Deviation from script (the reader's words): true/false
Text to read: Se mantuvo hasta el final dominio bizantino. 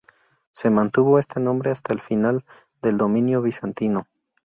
true